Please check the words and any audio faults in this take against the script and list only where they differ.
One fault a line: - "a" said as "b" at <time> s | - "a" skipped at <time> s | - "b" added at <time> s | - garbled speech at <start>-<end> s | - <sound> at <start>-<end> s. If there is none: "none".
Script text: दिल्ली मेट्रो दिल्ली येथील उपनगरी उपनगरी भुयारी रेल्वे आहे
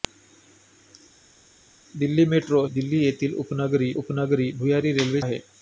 none